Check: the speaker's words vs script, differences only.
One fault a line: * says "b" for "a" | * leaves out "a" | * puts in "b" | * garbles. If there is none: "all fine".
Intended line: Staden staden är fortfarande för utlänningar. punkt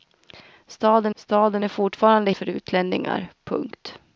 all fine